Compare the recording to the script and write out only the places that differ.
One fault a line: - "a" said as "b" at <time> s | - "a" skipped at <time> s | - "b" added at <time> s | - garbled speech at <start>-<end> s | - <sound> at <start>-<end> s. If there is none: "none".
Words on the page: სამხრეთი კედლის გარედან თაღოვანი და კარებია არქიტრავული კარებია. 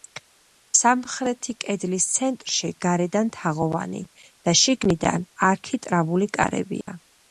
- "ცენტრში" added at 2.1 s
- "კარებია" said as "შიგნიდან" at 4.7 s
- dropout at 6.8-6.9 s